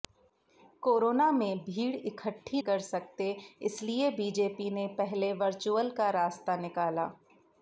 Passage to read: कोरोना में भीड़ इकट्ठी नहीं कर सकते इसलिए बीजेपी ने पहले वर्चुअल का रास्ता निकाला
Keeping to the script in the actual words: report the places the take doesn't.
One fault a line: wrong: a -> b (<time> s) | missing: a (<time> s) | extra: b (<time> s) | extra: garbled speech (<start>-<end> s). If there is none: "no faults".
missing: नहीं (2.6 s)